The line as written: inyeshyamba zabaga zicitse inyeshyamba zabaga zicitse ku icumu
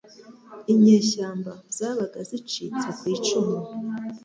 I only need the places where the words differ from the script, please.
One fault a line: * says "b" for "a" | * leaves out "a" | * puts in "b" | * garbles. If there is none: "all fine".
* leaves out "inyeshyamba zabaga zicitse"